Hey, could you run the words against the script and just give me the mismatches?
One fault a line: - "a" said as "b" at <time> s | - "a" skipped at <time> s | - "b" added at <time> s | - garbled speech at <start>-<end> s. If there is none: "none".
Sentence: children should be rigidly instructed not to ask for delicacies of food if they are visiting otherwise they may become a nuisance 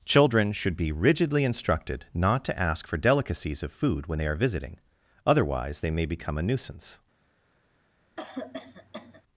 - "if" said as "when" at 4.1 s